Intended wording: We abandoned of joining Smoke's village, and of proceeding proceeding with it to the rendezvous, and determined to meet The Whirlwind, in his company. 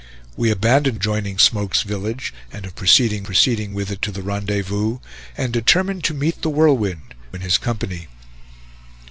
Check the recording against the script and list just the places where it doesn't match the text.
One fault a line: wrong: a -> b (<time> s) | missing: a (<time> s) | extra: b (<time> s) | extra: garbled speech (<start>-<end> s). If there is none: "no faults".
no faults